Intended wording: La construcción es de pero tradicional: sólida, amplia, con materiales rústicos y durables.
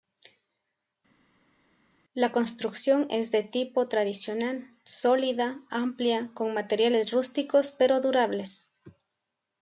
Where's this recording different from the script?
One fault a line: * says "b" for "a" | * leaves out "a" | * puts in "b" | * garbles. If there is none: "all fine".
* says "tipo" for "pero"
* says "pero" for "y"